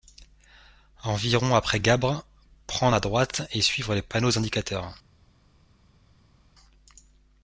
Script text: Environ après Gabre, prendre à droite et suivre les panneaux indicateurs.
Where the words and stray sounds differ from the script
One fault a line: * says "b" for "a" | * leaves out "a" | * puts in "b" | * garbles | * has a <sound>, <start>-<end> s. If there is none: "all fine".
all fine